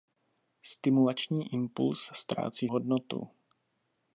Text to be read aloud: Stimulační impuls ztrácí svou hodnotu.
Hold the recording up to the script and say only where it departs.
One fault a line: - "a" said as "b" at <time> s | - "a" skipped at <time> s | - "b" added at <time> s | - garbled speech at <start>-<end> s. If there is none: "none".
- "svou" skipped at 2.7 s